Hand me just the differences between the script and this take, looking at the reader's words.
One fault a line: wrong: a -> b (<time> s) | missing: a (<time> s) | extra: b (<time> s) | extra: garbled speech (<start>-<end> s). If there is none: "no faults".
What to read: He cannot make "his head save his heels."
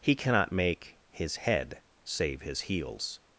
no faults